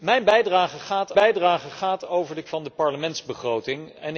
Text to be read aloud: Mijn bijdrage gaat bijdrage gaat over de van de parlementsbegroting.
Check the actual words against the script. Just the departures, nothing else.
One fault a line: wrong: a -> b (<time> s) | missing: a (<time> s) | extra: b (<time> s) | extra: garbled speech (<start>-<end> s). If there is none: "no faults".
no faults